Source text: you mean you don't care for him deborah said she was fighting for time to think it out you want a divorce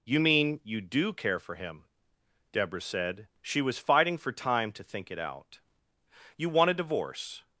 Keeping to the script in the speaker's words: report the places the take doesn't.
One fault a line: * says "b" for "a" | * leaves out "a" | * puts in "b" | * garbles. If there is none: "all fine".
* says "do" for "don't"